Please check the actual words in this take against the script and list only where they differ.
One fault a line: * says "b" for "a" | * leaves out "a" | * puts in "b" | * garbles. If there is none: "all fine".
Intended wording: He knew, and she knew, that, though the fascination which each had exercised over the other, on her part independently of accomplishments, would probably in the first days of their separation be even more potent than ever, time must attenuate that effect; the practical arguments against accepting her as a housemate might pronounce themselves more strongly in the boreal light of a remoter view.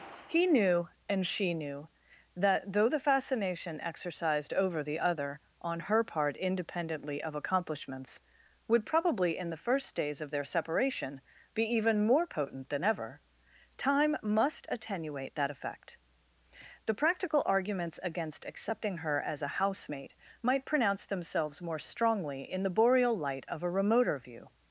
* leaves out "which each had"